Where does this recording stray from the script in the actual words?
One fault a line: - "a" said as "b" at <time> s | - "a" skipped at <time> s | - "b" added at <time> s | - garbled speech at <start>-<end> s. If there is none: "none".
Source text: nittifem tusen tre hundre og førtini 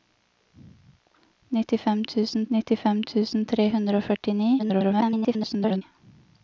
- "nittifem tusen" added at 2.6 s
- garbled speech at 4.6-5.8 s